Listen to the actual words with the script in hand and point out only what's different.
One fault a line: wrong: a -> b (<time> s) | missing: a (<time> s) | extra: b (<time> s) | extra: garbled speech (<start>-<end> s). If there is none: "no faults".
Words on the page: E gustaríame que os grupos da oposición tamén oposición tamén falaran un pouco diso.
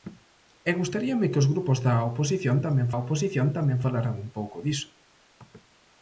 no faults